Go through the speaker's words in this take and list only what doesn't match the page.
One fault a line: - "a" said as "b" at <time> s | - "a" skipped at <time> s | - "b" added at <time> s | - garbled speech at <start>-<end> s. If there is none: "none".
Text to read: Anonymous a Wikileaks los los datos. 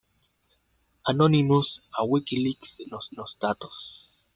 none